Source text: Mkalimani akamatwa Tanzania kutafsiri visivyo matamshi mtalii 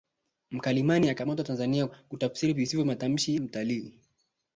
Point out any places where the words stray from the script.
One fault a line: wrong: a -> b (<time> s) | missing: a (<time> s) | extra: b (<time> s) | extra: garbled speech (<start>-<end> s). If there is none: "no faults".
no faults